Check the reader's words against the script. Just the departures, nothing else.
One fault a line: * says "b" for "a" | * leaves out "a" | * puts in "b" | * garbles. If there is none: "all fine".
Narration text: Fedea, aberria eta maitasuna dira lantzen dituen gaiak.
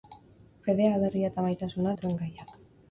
* leaves out "dira lantzen"